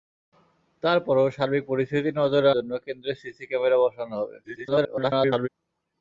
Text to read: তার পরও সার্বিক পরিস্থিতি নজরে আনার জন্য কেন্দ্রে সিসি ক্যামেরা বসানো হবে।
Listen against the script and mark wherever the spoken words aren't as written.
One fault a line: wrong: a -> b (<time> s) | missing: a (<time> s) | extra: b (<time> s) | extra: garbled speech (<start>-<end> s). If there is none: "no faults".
missing: আনার (2.5 s)
extra: garbled speech (4.4-5.5 s)